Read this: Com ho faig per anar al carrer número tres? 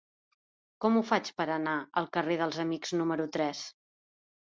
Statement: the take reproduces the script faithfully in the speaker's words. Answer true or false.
false